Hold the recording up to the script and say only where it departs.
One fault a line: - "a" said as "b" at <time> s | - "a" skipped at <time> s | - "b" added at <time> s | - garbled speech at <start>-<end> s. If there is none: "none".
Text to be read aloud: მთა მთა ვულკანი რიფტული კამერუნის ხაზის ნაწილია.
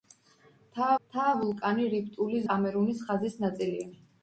none